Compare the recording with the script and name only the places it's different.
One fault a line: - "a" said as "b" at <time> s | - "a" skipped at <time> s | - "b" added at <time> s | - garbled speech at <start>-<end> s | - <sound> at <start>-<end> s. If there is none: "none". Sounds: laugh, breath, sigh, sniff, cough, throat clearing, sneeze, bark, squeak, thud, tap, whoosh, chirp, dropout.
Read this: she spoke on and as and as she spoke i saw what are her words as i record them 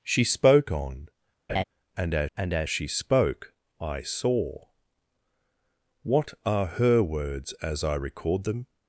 - laugh at 1.5-1.6 s